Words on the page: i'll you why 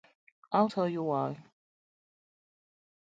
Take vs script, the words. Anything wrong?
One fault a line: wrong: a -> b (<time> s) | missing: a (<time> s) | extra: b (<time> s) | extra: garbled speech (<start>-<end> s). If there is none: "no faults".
extra: tell (0.6 s)